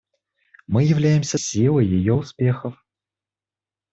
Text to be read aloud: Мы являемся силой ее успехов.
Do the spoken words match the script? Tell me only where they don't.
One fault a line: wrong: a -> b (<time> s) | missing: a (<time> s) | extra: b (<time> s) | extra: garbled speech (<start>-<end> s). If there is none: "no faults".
no faults